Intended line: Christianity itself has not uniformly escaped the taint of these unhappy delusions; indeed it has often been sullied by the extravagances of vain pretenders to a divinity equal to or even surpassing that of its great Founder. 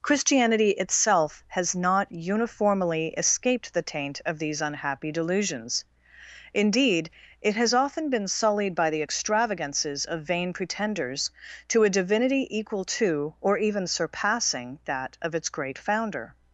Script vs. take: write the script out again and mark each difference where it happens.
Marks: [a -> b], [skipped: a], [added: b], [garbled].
Christianity itself has not uniformly escaped the taint of these unhappy delusions; indeed it has often been sullied by the extravagances of vain pretenders to a divinity equal to or even surpassing that of its great Founder.